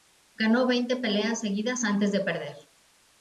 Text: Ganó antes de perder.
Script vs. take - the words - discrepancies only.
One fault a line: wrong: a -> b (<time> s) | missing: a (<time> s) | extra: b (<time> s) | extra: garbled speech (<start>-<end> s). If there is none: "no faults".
extra: veinte peleas seguidas (0.7 s)